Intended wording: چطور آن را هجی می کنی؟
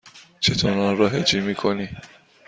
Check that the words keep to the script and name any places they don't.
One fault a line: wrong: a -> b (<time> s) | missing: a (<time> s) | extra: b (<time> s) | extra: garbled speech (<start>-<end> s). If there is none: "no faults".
no faults